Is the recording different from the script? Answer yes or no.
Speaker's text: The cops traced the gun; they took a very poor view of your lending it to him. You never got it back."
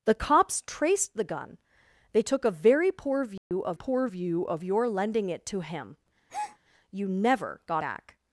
yes